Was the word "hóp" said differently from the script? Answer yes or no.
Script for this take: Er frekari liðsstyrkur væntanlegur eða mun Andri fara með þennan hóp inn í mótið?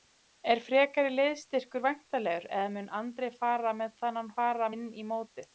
yes